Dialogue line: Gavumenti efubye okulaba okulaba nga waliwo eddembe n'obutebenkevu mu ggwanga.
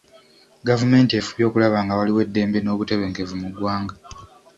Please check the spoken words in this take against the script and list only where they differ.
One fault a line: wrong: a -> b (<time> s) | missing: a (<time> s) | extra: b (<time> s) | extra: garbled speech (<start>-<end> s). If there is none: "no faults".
missing: okulaba (1.8 s)